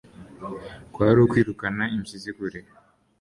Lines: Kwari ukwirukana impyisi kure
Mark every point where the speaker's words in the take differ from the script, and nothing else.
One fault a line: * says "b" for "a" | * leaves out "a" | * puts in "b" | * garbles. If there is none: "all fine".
all fine